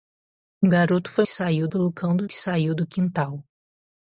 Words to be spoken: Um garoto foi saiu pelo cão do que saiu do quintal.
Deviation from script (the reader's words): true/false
false